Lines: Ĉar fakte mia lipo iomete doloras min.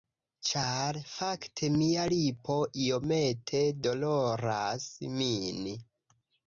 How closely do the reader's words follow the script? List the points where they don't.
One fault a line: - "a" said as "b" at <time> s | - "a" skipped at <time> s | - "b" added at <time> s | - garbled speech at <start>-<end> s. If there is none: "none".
none